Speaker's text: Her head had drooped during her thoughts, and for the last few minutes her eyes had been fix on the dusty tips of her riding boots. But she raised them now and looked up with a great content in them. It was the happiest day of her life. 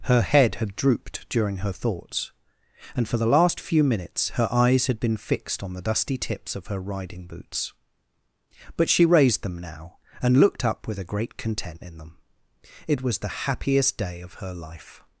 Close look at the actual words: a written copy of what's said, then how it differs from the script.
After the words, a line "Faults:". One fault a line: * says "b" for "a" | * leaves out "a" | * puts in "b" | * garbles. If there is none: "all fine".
Her head had drooped during her thoughts, and for the last few minutes her eyes had been fixed on the dusty tips of her riding boots. But she raised them now and looked up with a great content in them. It was the happiest day of her life.
Faults:
* says "fixed" for "fix"